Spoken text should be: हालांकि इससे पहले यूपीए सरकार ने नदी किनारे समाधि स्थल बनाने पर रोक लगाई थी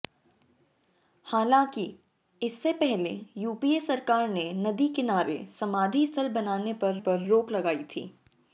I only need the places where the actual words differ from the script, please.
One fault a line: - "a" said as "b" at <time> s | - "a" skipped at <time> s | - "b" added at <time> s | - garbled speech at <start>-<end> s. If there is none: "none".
- "पर" added at 7.0 s